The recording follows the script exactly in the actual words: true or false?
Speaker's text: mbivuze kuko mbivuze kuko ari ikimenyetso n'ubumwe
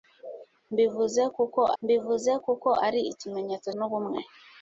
true